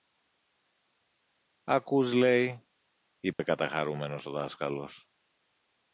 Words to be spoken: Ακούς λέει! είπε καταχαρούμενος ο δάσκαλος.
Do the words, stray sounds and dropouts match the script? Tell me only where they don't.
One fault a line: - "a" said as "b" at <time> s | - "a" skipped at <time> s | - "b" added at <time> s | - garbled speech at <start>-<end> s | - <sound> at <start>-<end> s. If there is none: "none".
- dropout at 3.3-3.4 s